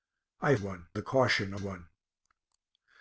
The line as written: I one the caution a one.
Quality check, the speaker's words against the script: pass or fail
pass